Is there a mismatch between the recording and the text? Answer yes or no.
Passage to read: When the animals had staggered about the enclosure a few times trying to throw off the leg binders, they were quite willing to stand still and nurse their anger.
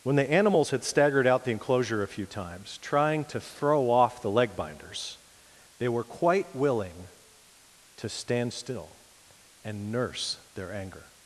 yes